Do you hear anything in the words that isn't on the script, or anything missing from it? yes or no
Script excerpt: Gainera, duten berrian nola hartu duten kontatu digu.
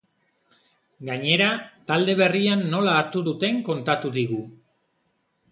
yes